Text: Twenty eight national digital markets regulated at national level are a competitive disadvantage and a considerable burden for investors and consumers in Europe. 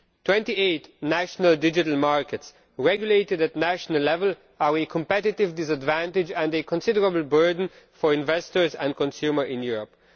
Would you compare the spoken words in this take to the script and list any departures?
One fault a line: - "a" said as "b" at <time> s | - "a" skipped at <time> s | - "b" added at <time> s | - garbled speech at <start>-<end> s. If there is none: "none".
none